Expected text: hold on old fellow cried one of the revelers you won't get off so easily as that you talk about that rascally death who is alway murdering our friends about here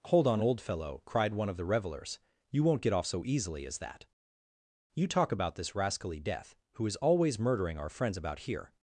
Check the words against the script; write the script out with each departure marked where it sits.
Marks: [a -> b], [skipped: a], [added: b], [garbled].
hold on old fellow cried one of the revelers you won't get off so easily as that you talk about [that -> this] rascally death who is [alway -> always] murdering our friends about here